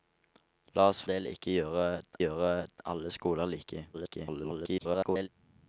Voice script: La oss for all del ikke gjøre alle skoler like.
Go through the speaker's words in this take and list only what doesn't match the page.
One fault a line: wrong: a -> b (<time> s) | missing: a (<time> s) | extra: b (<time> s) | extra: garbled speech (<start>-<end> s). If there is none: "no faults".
missing: for all (1.0 s)
extra: gjøre (2.2 s)
extra: garbled speech (3.9-5.3 s)